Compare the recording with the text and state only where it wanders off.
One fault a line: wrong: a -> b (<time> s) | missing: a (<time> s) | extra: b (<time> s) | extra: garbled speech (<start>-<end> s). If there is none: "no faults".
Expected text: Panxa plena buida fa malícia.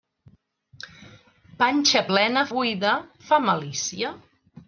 no faults